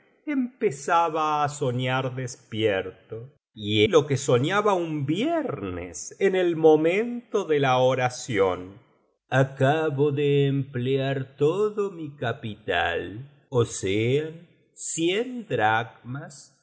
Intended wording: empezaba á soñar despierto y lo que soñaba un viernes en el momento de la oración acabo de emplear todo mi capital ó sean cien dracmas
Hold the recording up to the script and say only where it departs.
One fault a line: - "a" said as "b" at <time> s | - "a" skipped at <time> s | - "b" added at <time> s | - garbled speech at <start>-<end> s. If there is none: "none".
none